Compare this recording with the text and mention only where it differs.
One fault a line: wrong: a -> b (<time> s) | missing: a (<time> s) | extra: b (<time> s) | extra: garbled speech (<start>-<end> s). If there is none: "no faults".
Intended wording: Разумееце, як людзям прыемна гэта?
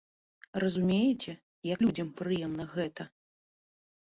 no faults